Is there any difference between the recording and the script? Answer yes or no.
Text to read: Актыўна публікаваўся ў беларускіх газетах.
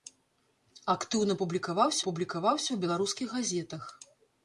yes